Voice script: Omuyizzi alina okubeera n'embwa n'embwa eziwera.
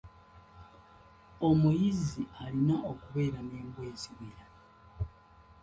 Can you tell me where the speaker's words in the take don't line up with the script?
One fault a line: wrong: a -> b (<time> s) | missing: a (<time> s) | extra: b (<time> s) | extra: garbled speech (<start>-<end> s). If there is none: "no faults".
missing: n'embwa (3.8 s)